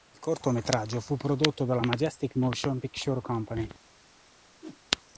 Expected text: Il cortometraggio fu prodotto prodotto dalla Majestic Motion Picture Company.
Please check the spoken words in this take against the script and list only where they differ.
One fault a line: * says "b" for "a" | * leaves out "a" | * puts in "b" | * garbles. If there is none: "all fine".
* leaves out "prodotto"